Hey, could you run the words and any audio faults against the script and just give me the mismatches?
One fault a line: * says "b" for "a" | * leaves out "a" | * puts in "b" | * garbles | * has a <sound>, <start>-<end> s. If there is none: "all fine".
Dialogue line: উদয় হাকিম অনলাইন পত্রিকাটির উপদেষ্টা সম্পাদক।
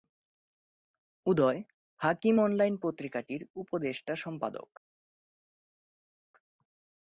all fine